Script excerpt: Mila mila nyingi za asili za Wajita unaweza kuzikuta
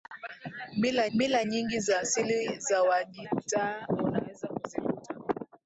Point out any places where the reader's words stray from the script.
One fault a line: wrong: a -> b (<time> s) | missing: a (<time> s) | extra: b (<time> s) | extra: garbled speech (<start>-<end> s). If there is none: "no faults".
no faults